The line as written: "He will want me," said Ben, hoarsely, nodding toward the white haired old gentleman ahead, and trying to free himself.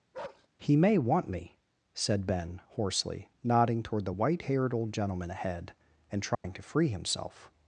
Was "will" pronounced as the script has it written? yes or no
no